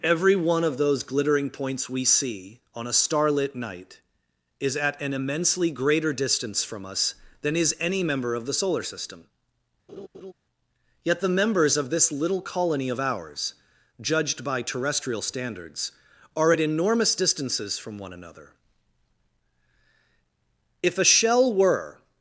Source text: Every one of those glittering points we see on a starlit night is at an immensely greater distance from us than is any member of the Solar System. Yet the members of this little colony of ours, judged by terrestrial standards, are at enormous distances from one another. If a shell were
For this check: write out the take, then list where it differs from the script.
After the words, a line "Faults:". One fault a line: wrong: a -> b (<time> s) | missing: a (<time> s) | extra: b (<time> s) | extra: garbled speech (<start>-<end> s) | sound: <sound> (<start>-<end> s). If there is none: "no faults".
Every one of those glittering points we see on a starlit night is at an immensely greater distance from us than is any member of the Solar System. Yet the members of this little colony of ours, judged by terrestrial standards, are at enormous distances from one another. If a shell were
Faults:
sound: laugh (9.9-10.3 s)